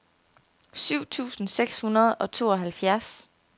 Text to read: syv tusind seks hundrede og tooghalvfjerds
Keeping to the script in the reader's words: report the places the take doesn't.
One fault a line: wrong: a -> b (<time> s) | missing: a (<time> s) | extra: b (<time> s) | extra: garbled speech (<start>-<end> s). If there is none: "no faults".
no faults